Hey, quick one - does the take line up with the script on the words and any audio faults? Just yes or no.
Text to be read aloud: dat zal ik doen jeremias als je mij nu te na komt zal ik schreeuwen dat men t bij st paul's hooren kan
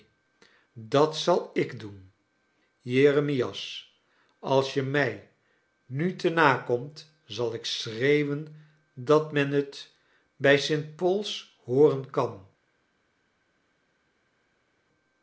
yes